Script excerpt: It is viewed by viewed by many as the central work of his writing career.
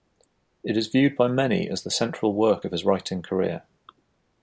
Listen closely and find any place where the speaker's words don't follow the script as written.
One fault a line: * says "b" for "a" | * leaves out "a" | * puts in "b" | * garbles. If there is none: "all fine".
* leaves out "viewed by"